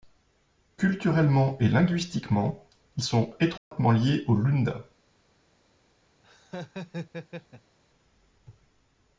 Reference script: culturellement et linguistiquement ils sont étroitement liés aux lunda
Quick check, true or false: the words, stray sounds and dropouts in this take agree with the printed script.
false